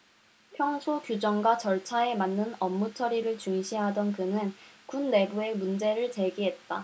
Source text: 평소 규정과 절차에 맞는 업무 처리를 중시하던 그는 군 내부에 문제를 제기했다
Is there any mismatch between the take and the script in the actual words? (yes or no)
no